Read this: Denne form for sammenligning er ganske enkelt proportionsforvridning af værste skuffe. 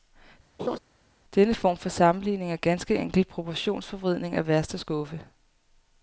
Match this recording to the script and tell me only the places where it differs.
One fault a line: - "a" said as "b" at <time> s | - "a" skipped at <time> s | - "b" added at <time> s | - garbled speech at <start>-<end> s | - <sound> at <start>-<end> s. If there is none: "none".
- laugh at 0.6-0.8 s